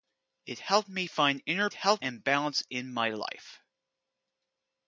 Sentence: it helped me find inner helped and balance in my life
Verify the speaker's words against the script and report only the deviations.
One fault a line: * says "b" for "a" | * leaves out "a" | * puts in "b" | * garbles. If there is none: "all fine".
all fine